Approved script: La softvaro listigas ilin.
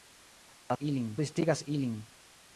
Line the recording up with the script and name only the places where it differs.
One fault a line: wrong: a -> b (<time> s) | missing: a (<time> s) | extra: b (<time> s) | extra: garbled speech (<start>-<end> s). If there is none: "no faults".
wrong: softvaro -> ilin (0.8 s)